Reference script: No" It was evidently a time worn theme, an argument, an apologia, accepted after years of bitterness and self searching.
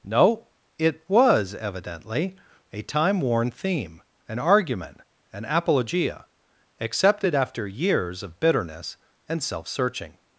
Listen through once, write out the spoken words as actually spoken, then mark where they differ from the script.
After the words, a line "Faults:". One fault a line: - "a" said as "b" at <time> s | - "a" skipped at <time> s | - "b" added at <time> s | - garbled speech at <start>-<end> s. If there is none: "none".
No" It was evidently a time worn theme, an argument, an apologia, accepted after years of bitterness and self searching.
Faults:
none